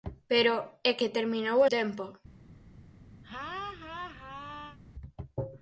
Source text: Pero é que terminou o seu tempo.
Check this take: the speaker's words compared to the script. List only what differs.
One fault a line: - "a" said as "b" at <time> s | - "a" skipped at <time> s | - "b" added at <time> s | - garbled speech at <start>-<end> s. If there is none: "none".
- "seu" skipped at 1.7 s